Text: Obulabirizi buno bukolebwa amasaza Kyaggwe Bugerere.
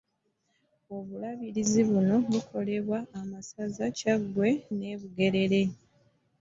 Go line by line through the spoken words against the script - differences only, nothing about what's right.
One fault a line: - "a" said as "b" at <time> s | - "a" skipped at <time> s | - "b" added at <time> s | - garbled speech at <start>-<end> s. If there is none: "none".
- "ne" added at 4.8 s